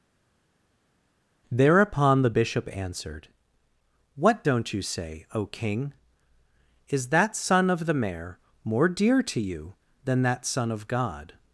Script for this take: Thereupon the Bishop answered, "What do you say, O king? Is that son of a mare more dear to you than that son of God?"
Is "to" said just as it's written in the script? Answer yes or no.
yes